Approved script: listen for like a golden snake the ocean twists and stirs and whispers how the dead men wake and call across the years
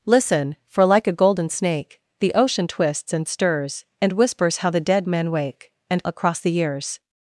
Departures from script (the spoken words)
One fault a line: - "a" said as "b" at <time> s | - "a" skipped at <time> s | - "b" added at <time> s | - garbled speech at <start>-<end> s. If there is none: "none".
- "call" skipped at 6.0 s